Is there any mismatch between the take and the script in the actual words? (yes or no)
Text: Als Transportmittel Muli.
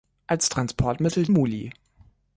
no